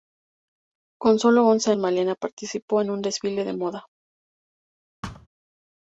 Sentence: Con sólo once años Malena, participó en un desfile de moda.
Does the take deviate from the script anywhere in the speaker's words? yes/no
yes